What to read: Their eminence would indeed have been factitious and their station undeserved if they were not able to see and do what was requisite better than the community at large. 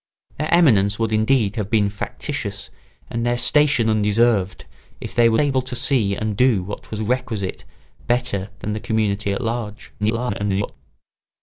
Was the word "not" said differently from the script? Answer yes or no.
yes